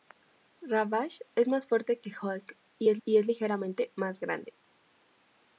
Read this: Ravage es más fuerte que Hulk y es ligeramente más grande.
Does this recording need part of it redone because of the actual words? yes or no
yes